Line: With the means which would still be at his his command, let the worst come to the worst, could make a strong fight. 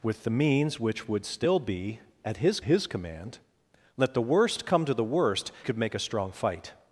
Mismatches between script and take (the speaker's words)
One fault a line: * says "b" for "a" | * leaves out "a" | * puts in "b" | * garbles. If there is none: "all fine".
all fine